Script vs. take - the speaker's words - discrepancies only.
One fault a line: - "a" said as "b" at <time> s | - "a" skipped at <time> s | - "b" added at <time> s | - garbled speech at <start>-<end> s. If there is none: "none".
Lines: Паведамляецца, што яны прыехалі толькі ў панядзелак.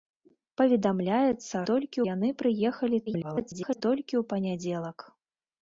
- "што" said as "толькі" at 1.7 s
- garbled speech at 3.1-3.8 s